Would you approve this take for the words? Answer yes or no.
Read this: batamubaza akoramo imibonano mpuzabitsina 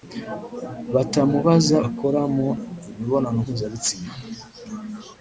yes